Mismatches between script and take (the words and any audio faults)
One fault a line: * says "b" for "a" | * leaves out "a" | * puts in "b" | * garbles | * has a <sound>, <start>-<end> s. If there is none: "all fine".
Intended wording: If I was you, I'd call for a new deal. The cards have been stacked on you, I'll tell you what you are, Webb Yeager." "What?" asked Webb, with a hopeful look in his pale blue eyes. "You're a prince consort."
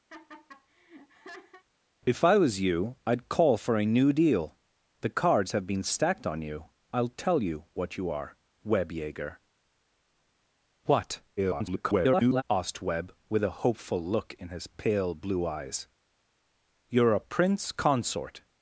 * has a laugh, 0.1-1.6 s
* garbles